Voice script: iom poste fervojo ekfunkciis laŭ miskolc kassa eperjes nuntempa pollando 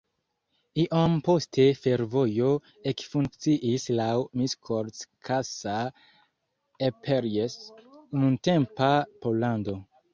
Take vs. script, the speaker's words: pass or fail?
pass